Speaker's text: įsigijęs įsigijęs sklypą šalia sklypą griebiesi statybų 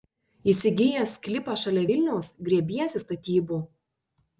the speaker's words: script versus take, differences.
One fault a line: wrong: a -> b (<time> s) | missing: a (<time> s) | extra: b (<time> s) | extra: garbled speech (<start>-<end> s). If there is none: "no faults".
missing: įsigijęs (1.1 s)
wrong: sklypą -> vilniaus (1.9 s)